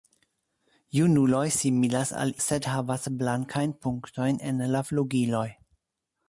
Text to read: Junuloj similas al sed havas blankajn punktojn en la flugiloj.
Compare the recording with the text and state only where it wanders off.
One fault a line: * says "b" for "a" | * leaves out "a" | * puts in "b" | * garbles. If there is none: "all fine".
all fine